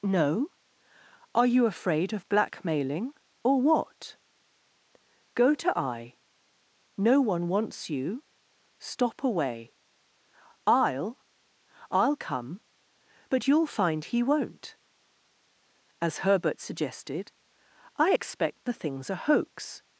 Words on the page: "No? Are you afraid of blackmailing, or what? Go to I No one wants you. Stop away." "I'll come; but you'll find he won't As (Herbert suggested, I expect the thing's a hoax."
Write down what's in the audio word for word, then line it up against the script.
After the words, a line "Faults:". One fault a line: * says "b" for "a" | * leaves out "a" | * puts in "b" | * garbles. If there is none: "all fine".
"No? Are you afraid of blackmailing, or what? Go to I No one wants you. Stop away." "I'll I'll come; but you'll find he won't As (Herbert suggested, I expect the thing's a hoax."
Faults:
* puts in "I'll"